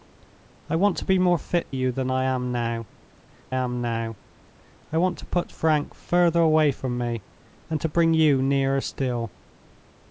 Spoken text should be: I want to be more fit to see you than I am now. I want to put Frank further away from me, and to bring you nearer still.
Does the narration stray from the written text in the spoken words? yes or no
yes